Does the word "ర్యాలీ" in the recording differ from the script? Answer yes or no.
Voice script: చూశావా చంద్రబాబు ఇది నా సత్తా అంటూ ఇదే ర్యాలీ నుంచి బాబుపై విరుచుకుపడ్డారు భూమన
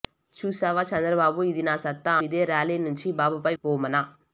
no